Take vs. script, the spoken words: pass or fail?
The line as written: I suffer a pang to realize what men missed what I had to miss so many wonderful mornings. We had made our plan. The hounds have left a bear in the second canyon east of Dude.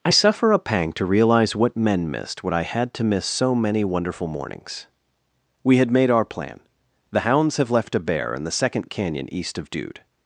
pass